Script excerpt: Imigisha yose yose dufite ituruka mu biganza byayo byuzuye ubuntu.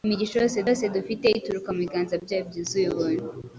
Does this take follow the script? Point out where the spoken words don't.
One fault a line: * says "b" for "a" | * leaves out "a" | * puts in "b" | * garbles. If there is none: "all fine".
all fine